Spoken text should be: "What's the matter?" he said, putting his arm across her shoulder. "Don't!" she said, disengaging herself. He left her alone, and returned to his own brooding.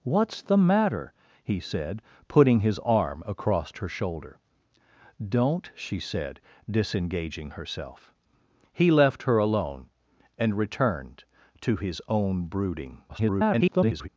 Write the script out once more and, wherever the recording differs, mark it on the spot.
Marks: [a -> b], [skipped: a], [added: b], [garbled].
"What's the matter?" he said, putting his arm across her shoulder. "Don't!" she said, disengaging herself. He left her alone, and returned to his own brooding. [garbled]